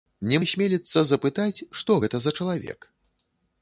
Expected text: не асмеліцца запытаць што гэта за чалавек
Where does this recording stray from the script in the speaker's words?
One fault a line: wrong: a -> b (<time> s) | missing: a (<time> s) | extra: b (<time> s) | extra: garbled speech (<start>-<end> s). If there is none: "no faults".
no faults